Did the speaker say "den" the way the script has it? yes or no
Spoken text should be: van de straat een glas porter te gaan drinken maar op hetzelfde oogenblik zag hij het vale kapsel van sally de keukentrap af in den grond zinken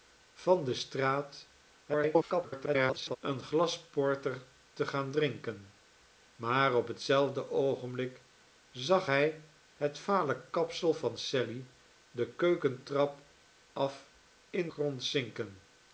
no